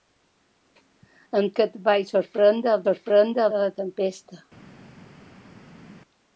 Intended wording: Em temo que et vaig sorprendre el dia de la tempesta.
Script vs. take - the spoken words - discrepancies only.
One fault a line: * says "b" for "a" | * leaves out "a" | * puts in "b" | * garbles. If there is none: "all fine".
* leaves out "temo"
* says "sorprendre" for "dia"